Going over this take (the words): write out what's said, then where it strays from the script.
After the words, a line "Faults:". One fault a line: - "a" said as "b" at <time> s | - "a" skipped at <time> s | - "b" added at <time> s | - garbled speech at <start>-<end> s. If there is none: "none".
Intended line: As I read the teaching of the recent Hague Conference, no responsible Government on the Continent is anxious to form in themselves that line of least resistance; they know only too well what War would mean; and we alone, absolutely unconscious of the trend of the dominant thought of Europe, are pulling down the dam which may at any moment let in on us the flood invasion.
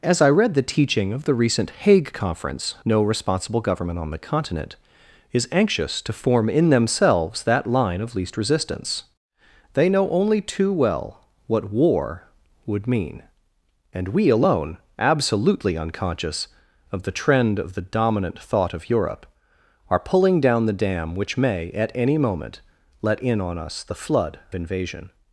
As I read the teaching of the recent Hague Conference, no responsible Government on the Continent is anxious to form in themselves that line of least resistance; they know only too well what War would mean; and we alone, absolutely unconscious of the trend of the dominant thought of Europe, are pulling down the dam which may at any moment let in on us the flood invasion.
Faults:
none